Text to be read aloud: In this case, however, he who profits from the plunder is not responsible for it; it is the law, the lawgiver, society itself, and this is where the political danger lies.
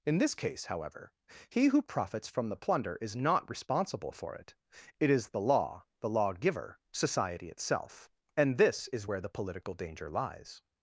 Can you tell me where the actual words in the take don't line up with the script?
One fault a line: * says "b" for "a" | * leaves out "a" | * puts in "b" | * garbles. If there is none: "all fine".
all fine